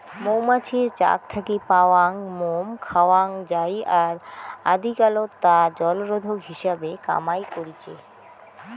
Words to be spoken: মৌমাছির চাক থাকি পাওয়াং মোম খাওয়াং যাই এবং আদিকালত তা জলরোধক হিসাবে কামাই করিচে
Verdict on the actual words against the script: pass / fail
fail